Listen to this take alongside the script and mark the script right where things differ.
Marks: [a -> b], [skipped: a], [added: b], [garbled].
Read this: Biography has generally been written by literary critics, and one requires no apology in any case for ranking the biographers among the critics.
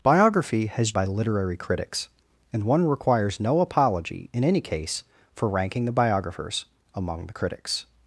Biography has [skipped: generally been written] by literary critics, and one requires no apology in any case for ranking the biographers among the critics.